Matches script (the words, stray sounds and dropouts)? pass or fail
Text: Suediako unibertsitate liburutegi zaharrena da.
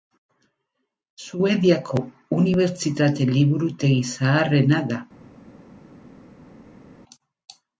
pass